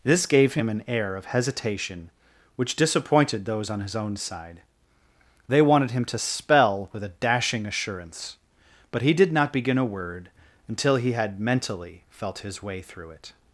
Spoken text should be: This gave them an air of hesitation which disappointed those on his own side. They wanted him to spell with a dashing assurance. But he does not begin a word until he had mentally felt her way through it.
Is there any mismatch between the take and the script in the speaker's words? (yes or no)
yes